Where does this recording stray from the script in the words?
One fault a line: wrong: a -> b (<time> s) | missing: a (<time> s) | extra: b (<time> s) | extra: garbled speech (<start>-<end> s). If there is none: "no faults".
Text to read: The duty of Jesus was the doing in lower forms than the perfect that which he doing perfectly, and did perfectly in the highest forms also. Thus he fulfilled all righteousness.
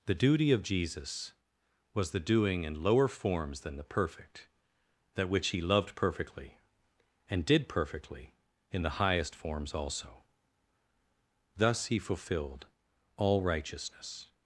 wrong: doing -> loved (5.6 s)